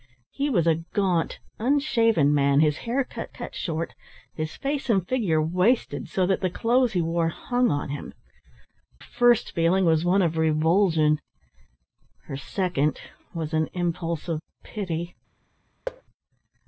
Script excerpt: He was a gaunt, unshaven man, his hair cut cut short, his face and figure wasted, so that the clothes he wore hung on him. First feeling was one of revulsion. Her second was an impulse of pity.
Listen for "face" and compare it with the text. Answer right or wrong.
right